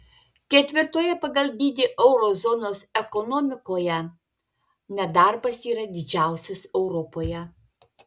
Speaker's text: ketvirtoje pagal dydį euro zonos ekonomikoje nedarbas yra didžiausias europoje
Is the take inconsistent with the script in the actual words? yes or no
no